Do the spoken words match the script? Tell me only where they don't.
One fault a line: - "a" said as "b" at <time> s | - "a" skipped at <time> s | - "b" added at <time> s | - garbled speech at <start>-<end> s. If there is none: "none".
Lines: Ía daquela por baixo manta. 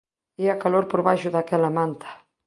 - "daquela" said as "calor" at 0.6 s
- "daquela" added at 1.3 s